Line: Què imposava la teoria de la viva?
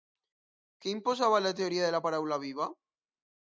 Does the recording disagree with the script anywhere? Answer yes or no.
yes